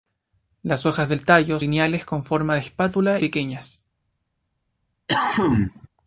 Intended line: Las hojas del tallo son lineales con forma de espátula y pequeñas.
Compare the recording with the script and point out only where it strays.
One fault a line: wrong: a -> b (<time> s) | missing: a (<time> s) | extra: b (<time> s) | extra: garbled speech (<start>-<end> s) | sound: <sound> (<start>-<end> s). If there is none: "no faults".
missing: son (1.6 s)
missing: y (3.2 s)
sound: cough (5.1-5.9 s)